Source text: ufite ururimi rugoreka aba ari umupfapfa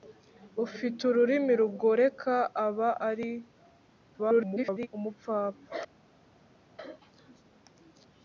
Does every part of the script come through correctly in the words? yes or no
no